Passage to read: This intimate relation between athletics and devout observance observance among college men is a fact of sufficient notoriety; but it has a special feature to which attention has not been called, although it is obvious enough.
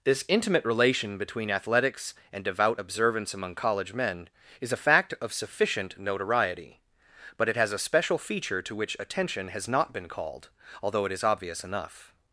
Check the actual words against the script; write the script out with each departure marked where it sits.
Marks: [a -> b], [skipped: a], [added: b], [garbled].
This intimate relation between athletics and devout observance [skipped: observance] among college men is a fact of sufficient notoriety; but it has a special feature to which attention has not been called, although it is obvious enough.